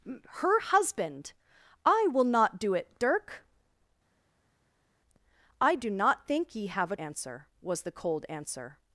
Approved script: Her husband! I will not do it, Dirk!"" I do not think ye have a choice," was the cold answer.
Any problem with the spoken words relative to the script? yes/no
yes